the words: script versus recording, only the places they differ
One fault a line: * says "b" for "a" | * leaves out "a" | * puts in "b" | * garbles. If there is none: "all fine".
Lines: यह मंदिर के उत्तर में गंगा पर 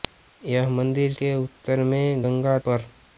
all fine